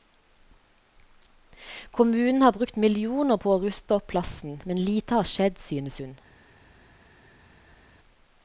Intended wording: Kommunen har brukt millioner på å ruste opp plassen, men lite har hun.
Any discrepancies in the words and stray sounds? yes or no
yes